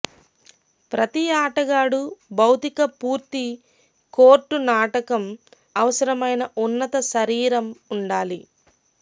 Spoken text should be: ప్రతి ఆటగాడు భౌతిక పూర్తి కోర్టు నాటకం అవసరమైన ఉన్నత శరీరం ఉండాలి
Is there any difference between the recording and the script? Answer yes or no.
no